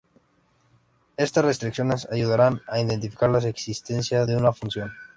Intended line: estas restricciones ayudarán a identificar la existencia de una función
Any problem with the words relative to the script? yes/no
no